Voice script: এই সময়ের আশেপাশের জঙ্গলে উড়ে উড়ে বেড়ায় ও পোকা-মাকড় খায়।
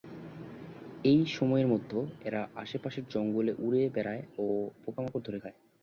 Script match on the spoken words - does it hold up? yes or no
no